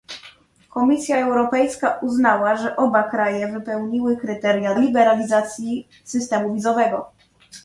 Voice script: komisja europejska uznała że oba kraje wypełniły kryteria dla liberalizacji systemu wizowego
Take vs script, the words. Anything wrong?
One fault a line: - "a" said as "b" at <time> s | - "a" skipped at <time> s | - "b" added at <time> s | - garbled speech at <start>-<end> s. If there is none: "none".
- "dla" skipped at 4.7 s